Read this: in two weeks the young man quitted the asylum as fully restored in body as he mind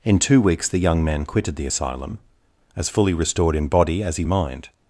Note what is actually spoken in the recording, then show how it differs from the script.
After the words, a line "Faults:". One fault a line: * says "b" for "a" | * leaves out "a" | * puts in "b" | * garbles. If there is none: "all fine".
in two weeks the young man quitted the asylum as fully restored in body as he mind
Faults:
all fine